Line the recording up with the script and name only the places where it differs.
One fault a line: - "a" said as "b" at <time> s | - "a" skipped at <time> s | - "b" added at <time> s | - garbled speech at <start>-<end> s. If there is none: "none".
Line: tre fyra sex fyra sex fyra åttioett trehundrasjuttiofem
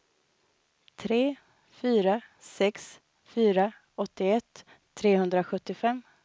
- "sex fyra" skipped at 3.7 s